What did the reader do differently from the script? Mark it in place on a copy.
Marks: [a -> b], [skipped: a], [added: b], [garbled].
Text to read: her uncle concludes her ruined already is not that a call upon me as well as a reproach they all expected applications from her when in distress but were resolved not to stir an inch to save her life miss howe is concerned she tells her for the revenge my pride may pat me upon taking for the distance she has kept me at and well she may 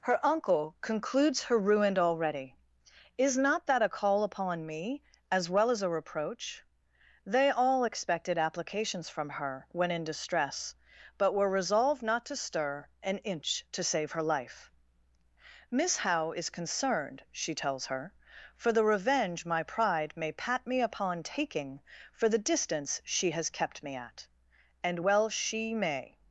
her uncle concludes her ruined already is not that a call upon me as well as a reproach they all expected applications from her when in distress but were resolved not to stir an inch to save her life miss howe is concerned she tells her for the revenge my pride may pat me upon taking for the distance she has kept me at and well she may